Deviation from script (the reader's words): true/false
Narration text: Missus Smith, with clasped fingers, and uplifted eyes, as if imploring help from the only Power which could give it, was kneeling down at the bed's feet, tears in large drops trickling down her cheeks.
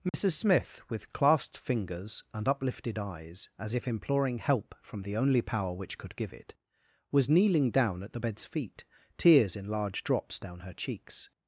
true